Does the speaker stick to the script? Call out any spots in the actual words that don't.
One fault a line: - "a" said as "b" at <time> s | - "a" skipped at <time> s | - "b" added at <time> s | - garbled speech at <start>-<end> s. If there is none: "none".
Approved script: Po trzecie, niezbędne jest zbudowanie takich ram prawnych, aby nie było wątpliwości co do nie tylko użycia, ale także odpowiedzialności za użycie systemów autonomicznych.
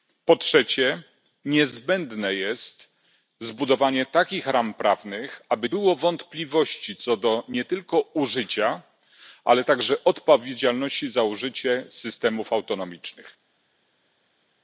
- "nie" skipped at 5.7 s